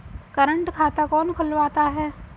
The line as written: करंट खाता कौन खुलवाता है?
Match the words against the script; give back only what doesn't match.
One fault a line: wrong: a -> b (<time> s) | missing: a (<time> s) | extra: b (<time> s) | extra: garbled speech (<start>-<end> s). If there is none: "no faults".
no faults